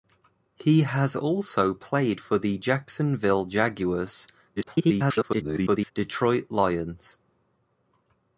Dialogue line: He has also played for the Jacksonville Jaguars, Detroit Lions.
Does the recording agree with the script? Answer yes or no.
no